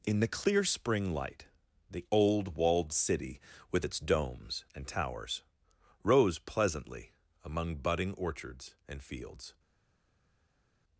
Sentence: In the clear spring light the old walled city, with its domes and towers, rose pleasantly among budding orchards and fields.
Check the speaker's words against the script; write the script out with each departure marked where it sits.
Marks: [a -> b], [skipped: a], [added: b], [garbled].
In the clear spring light the old walled city, with its domes and towers, rose pleasantly among budding orchards and fields.